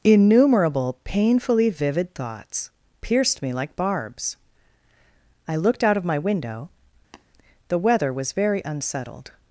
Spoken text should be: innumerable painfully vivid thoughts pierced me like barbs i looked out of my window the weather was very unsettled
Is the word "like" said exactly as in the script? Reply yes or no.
yes